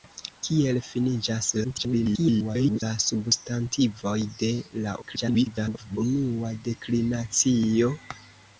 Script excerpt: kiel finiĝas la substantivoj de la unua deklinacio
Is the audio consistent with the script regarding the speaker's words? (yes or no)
no